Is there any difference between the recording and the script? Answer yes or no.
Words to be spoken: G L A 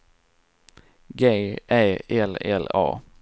yes